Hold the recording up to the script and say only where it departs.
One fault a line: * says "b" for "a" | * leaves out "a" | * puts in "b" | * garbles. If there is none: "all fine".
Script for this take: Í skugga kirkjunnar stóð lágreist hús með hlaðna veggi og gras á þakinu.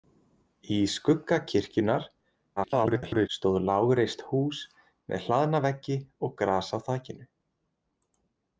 * garbles